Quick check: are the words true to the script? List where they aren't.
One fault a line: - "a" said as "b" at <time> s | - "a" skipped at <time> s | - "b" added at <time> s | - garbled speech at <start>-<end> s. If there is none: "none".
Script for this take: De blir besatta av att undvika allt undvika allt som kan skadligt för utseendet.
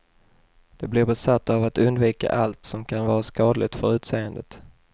- "undvika allt" skipped at 2.7 s
- "vara" added at 3.1 s